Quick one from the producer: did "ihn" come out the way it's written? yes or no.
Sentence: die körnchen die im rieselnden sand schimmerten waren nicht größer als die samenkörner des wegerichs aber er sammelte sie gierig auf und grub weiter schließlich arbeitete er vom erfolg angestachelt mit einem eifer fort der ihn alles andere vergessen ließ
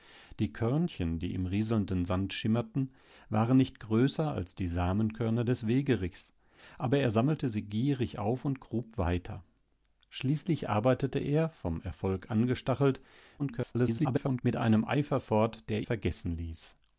no